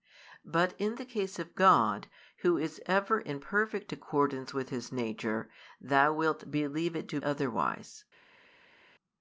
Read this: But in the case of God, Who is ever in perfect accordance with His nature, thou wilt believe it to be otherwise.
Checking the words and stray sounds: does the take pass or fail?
fail